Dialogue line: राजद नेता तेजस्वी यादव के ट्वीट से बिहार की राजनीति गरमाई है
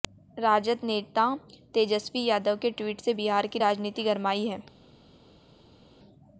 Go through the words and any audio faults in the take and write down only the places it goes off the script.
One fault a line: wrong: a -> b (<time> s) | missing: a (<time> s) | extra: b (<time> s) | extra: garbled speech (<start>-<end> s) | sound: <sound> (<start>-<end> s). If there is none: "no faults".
no faults